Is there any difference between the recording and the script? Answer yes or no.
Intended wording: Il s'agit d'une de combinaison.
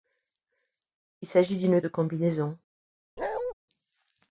no